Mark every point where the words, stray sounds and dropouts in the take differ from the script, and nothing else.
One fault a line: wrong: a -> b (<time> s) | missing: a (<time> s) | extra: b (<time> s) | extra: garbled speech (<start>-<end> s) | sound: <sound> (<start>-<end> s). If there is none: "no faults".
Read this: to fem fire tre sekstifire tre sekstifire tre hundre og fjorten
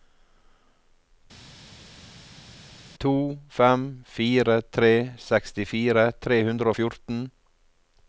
missing: sekstifire tre (6.4 s)